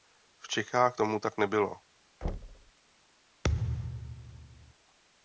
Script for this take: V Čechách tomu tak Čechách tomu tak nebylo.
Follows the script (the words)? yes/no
no